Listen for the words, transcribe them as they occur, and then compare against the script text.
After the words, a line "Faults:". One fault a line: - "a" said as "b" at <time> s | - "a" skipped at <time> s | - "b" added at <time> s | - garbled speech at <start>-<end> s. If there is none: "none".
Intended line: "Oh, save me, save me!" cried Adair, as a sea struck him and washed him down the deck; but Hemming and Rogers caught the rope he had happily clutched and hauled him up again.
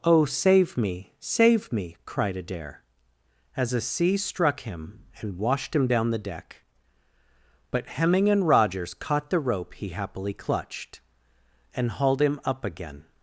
"Oh, save me, save me!" cried Adair, as a sea struck him and washed him down the deck; but Hemming and Rogers caught the rope he happily clutched and hauled him up again.
Faults:
- "had" skipped at 9.9 s